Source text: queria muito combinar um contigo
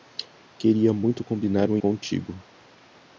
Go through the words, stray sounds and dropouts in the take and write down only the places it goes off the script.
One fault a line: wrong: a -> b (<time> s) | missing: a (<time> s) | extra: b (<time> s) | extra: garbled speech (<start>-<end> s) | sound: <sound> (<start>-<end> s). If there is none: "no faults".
no faults